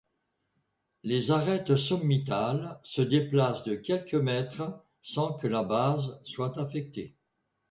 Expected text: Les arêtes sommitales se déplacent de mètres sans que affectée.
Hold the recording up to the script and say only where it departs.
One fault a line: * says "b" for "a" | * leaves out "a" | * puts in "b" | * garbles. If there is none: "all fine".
* puts in "quelques"
* puts in "la base soit"